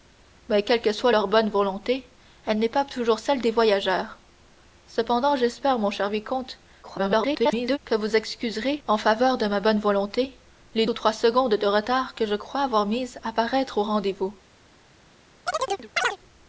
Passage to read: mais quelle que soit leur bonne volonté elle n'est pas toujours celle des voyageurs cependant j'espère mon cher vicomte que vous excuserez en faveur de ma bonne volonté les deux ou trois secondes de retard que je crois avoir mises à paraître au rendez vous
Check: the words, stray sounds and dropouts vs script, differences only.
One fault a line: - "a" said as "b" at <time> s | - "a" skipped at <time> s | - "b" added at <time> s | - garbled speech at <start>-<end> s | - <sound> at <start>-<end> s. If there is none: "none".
- garbled speech at 6.8-7.8 s
- "deux" skipped at 10.9 s
- chirp at 15.5-16.2 s